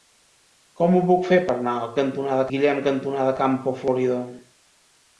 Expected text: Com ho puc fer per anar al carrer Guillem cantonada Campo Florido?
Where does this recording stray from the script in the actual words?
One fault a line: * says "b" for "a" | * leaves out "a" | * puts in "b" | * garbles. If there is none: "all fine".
* says "cantonada" for "carrer"